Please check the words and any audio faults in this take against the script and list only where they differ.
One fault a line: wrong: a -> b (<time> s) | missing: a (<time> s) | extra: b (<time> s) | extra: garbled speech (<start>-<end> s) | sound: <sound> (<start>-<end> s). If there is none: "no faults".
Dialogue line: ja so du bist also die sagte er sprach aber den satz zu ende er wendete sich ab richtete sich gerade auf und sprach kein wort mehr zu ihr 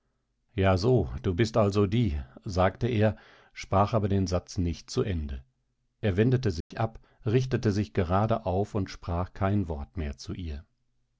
extra: nicht (4.6 s)
sound: dropout (6.6-6.7 s)